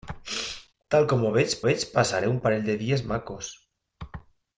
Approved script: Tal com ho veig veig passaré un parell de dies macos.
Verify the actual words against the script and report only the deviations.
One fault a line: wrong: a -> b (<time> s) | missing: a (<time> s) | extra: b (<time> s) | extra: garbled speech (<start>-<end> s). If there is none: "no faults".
no faults